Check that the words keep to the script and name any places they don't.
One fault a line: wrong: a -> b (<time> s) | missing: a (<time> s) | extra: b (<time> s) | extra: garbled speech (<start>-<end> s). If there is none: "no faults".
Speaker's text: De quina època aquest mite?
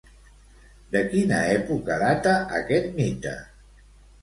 extra: data (2.0 s)